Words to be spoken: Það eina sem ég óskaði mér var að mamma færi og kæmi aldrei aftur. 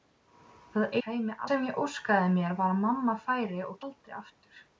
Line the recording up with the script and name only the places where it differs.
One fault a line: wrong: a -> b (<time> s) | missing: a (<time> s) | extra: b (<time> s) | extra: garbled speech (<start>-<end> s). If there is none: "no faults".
wrong: eina -> kæmi (1.0 s)
missing: kæmi (3.8 s)